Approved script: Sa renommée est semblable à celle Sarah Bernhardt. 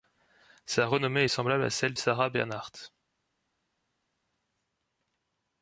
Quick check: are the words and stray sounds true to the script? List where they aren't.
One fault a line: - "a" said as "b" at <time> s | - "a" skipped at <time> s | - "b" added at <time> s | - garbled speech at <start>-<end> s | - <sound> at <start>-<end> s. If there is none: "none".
none